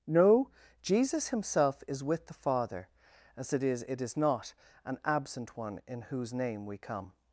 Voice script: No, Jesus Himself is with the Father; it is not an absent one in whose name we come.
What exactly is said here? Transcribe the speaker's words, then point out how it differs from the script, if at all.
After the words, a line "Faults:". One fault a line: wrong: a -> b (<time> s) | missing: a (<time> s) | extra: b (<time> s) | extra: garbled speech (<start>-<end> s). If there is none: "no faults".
No, Jesus Himself is with the Father; as it is it is not an absent one in whose name we come.
Faults:
extra: as it is (3.4 s)